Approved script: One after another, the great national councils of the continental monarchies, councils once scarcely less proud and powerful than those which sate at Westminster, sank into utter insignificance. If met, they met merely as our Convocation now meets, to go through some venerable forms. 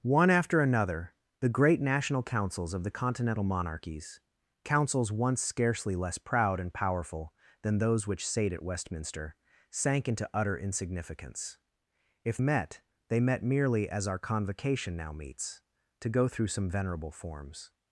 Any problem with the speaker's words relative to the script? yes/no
no